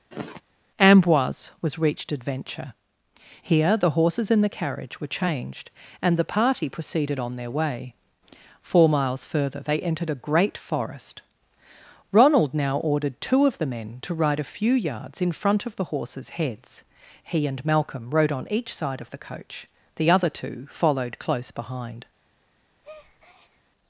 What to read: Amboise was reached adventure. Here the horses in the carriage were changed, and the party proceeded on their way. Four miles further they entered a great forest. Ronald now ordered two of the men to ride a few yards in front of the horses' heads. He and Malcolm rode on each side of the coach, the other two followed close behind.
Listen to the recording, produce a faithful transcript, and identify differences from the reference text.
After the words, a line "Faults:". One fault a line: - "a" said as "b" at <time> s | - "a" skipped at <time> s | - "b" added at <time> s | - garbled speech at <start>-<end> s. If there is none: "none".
Amboise was reached adventure. Here the horses in the carriage were changed, and the party proceeded on their way. Four miles further they entered a great forest. Ronald now ordered two of the men to ride a few yards in front of the horses' heads. He and Malcolm rode on each side of the coach, the other two followed close behind.
Faults:
none